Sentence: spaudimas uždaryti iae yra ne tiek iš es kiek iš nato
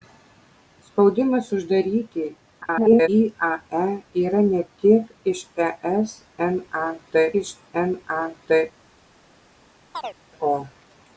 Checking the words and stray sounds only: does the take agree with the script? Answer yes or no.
no